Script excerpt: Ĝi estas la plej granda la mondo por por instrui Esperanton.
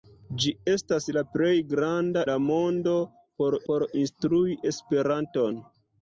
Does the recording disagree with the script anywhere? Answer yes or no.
no